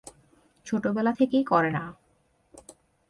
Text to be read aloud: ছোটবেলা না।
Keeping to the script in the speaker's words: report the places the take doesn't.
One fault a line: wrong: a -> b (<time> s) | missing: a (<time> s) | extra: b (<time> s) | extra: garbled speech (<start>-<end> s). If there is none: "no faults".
extra: থেকেই করে (1.1 s)